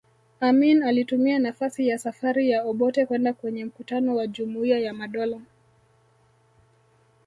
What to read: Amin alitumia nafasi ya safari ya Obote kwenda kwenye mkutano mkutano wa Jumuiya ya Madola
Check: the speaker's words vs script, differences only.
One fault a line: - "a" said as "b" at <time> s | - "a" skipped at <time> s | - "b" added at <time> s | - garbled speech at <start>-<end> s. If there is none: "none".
- "mkutano" skipped at 4.1 s